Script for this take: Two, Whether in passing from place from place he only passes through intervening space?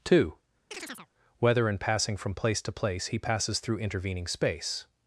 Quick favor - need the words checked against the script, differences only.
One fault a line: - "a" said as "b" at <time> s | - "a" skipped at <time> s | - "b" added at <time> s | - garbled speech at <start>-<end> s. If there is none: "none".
- "from" said as "to" at 2.6 s
- "only" skipped at 3.2 s